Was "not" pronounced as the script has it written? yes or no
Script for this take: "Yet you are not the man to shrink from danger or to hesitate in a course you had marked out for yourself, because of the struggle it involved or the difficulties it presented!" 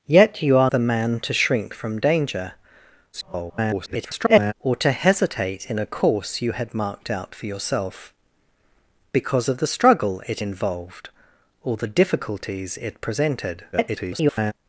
no